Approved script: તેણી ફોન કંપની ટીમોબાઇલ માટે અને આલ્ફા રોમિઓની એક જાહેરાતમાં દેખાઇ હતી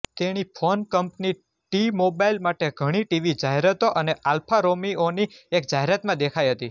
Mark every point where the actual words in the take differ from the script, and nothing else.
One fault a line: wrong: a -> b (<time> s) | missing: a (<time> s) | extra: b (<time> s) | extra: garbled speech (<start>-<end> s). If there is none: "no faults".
extra: ઘણી ટીવી જાહેરાતો (2.8 s)